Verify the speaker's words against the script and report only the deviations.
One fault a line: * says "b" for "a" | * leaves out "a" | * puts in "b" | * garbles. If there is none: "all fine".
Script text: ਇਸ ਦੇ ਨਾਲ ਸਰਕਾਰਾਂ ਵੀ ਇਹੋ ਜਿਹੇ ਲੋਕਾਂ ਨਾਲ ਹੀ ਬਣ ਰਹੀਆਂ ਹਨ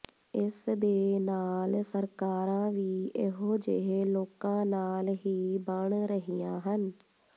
all fine